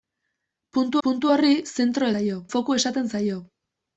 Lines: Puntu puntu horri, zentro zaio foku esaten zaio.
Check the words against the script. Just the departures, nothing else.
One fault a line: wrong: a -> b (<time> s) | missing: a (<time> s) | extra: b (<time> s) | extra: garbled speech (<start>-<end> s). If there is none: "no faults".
no faults